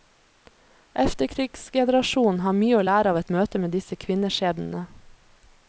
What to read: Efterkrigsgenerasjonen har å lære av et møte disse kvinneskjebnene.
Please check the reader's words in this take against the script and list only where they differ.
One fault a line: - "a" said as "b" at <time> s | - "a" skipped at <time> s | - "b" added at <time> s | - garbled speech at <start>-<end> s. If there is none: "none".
- "mye" added at 2.6 s
- "med" added at 3.6 s